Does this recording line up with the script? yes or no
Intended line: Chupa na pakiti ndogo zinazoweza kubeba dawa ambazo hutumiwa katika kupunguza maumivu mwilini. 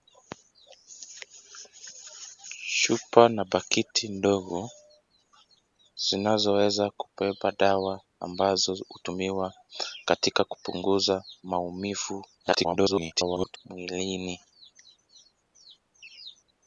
no